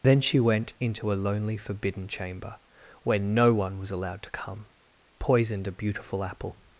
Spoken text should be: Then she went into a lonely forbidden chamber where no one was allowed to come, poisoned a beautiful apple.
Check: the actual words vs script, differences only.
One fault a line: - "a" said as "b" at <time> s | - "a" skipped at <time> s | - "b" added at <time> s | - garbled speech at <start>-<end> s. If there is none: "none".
none